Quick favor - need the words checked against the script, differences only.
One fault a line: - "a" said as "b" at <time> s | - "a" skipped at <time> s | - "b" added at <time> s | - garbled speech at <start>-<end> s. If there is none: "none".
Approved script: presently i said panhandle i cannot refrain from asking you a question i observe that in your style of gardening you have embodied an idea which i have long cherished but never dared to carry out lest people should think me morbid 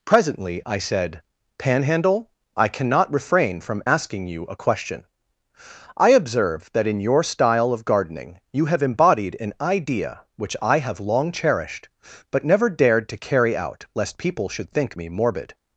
none